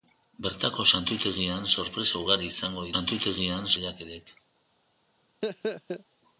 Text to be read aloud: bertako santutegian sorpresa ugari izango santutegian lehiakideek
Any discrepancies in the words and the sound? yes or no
yes